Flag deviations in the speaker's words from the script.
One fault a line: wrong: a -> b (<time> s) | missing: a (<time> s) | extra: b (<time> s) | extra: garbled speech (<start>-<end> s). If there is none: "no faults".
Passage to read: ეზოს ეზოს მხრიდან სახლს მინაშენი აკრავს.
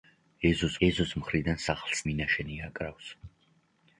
no faults